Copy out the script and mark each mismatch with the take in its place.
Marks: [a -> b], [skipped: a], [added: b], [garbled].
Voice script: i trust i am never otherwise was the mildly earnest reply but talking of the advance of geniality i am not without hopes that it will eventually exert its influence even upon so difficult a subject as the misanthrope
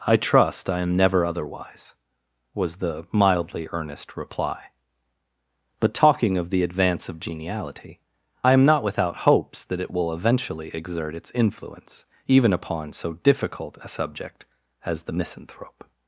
i trust i am never otherwise was the mildly earnest reply but talking of the advance of geniality i am not without hopes that it will eventually exert its influence even upon so difficult a subject as the misanthrope